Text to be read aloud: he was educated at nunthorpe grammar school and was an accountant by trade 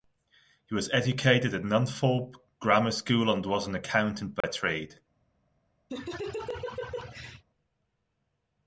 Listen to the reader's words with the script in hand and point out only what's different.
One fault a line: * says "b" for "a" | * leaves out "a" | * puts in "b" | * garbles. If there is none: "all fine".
all fine